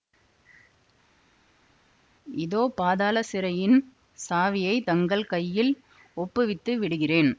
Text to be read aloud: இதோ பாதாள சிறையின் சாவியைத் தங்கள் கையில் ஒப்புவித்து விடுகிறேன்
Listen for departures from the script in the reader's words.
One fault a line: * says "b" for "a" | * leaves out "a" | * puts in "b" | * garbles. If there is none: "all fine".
all fine